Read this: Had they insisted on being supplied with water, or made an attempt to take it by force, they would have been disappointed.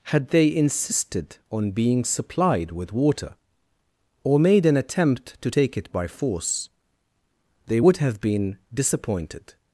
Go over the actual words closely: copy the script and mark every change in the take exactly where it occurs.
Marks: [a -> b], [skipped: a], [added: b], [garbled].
Had they insisted on being supplied with water, or made an attempt to take it by force, they would have been disappointed.